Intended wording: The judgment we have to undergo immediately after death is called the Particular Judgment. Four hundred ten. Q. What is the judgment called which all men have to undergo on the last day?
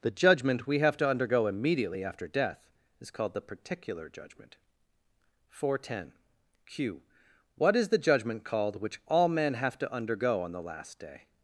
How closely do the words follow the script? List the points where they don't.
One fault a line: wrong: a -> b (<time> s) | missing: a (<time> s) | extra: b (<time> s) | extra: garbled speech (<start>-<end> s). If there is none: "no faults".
no faults